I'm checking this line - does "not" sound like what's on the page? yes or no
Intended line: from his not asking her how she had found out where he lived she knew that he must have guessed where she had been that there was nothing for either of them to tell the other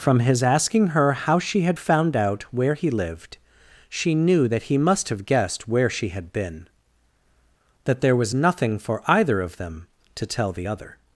no